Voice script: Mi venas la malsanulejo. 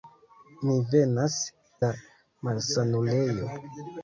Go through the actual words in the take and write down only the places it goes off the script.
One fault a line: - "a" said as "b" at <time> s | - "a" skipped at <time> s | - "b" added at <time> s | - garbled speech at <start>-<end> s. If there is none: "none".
none